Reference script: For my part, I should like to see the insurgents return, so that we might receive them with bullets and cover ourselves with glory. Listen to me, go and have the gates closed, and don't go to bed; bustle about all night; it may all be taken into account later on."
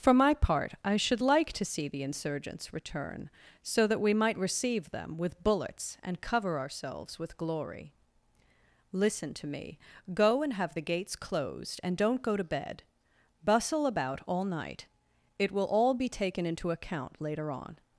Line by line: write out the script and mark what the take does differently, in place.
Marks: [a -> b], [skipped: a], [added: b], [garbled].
For my part, I should like to see the insurgents return, so that we might receive them with bullets and cover ourselves with glory. Listen to me, go and have the gates closed, and don't go to bed; bustle about all night; it [may -> will] all be taken into account later on."